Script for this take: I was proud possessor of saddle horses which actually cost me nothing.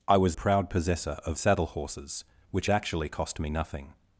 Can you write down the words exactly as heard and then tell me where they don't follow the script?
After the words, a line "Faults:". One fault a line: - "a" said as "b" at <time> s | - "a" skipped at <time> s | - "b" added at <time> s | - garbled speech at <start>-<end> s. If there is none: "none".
I was proud possessor of saddle horses which actually cost me nothing.
Faults:
none